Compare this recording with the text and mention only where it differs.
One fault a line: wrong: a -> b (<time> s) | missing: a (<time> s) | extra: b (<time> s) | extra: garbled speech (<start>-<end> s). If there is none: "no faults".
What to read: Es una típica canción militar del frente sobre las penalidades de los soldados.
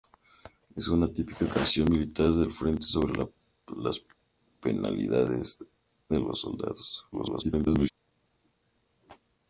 extra: garbled speech (7.1-7.9 s)